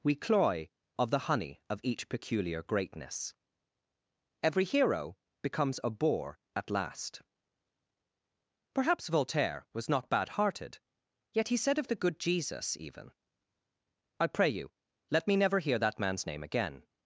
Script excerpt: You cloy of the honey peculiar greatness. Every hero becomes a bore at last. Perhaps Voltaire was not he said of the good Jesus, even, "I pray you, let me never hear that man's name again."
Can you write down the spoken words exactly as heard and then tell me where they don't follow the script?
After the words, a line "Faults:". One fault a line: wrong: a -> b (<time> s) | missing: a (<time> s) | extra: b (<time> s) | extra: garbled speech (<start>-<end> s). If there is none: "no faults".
We cloy of the honey of each peculiar greatness. Every hero becomes a bore at last. Perhaps Voltaire was not bad hearted, yet he said of the good Jesus, even, "I pray you, let me never hear that man's name again."
Faults:
wrong: You -> We (0.0 s)
extra: of each (1.7 s)
extra: bad hearted yet (10.1 s)